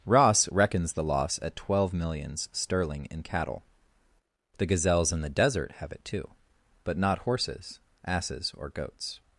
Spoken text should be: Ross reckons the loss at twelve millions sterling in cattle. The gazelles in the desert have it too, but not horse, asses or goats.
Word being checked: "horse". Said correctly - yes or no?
no